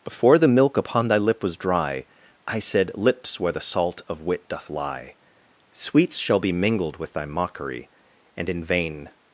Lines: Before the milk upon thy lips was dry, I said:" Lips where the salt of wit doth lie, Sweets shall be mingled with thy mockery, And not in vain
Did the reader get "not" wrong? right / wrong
wrong